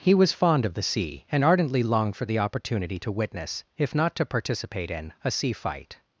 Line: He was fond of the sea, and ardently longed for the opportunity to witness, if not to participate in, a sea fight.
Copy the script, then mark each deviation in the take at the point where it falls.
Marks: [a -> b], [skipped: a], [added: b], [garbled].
He was fond of the sea, and ardently longed for the opportunity to witness, if not to participate in, a sea fight.